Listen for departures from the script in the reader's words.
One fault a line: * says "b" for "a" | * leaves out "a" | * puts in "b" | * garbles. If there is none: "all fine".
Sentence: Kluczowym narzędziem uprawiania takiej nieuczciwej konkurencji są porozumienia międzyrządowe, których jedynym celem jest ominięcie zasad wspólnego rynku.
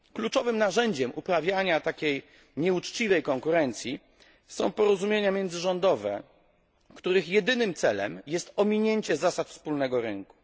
all fine